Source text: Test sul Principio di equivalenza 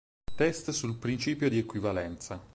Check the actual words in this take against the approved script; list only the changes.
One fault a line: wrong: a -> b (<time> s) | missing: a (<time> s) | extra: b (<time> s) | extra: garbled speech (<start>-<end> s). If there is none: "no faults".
no faults